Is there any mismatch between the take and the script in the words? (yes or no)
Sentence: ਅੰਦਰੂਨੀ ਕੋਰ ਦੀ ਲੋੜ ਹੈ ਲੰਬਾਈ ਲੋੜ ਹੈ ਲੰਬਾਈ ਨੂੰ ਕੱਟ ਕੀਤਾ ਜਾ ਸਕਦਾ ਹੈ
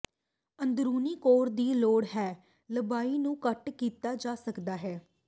yes